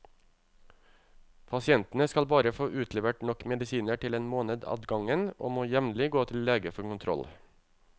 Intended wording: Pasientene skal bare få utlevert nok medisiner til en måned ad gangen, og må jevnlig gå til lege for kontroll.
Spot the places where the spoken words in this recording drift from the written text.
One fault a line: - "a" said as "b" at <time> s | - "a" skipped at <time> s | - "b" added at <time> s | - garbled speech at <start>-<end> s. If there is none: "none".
none